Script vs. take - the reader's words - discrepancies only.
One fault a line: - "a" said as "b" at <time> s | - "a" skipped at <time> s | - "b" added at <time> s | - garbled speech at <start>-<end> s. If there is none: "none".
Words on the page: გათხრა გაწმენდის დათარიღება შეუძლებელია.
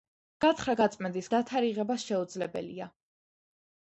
none